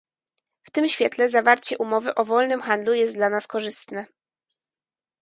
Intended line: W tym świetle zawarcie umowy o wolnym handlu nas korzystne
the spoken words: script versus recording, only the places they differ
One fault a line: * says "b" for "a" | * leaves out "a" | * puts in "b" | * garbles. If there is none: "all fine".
* puts in "jest dla"